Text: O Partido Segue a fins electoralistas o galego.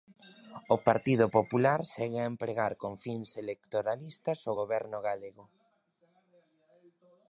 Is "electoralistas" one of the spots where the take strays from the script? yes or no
no